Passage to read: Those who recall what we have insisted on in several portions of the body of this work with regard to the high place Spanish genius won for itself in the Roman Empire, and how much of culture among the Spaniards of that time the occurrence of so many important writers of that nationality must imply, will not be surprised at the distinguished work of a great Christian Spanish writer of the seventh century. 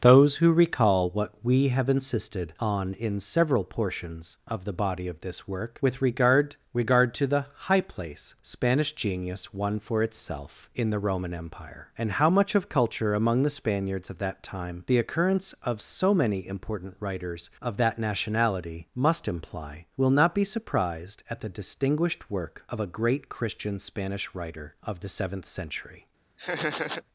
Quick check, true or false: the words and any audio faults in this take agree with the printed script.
false